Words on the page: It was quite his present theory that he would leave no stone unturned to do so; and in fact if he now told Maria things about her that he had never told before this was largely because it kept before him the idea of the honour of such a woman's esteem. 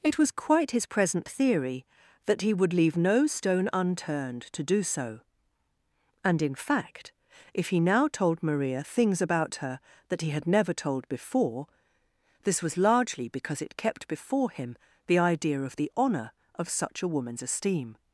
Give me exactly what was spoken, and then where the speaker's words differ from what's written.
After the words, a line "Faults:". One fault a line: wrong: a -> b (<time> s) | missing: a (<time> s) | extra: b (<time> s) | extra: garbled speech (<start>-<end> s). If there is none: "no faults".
It was quite his present theory that he would leave no stone unturned to do so; and in fact if he now told Maria things about her that he had never told before this was largely because it kept before him the idea of the honour of such a woman's esteem.
Faults:
no faults